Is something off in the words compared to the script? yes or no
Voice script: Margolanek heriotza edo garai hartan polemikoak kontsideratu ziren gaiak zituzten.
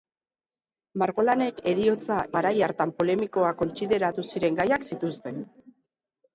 yes